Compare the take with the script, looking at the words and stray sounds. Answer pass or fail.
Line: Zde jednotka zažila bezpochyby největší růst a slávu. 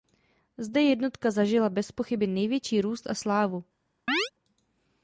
fail